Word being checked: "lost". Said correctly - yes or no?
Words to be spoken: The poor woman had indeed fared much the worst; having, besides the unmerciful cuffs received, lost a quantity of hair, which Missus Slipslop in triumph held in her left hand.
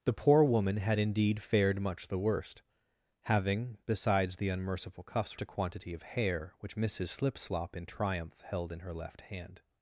no